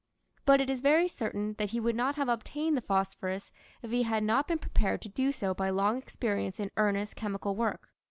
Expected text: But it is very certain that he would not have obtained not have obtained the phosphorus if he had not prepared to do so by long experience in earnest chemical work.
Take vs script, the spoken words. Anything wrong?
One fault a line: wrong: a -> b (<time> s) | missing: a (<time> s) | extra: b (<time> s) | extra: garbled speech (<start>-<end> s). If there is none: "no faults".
missing: not have obtained (2.8 s)
extra: been (4.5 s)